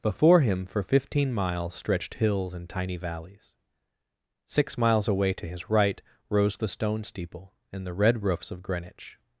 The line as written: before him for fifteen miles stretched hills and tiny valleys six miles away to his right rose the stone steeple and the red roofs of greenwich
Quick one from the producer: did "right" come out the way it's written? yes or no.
yes